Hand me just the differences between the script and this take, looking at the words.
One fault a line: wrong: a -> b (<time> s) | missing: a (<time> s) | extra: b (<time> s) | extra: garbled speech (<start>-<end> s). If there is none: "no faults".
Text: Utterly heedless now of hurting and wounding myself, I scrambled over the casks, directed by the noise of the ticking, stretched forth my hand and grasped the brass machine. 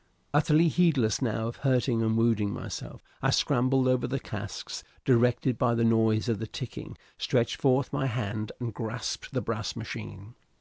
no faults